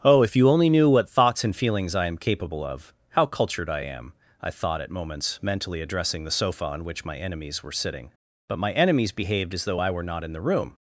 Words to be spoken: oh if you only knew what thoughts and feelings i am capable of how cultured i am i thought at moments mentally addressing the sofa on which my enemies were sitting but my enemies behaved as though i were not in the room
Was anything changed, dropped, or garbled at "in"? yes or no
no